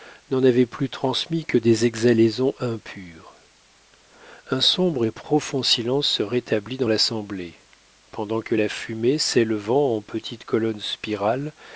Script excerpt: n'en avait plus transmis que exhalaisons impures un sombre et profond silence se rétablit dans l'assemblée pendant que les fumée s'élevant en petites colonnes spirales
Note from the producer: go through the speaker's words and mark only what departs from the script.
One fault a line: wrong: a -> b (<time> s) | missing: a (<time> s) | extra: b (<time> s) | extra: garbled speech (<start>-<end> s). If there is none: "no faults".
extra: des (1.6 s)
wrong: les -> la (8.5 s)